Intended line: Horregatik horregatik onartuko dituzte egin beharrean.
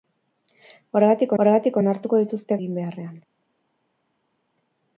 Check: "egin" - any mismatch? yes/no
no